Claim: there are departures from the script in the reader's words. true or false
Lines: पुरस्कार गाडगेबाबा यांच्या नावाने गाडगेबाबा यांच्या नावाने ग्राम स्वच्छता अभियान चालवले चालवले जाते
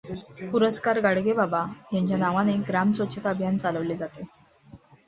true